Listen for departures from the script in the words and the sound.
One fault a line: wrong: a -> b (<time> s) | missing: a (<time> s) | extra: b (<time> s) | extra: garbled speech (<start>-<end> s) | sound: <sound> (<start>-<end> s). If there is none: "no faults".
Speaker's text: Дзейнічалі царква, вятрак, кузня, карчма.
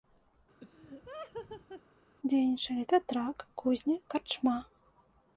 sound: laugh (0.6-1.8 s)
missing: царква (2.8 s)